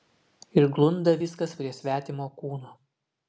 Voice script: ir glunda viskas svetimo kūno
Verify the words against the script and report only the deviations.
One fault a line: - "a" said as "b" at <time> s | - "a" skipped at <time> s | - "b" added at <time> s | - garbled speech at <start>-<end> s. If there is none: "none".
- "prie" added at 1.6 s